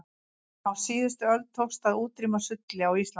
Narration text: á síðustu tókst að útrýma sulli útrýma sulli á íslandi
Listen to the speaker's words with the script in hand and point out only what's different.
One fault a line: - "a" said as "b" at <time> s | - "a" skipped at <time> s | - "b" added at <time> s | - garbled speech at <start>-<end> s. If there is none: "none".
- "öld" added at 1.3 s
- "útrýma sulli" skipped at 2.9 s